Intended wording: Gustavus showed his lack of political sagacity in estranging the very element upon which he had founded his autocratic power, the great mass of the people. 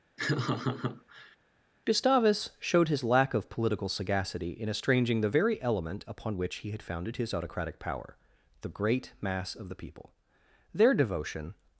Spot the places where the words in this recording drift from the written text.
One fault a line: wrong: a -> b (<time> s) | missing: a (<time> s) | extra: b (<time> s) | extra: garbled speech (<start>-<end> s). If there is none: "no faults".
extra: Their devotion (10.7 s)